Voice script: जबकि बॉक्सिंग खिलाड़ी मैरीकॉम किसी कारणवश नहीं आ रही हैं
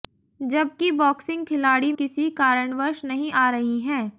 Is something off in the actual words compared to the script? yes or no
yes